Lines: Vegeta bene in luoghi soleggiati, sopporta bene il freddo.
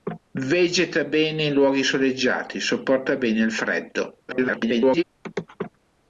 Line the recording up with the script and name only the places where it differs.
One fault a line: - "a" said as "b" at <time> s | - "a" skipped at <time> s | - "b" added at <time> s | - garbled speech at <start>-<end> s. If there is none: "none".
- garbled speech at 4.3-5.0 s